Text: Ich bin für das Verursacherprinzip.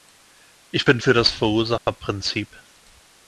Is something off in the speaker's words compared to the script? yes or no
no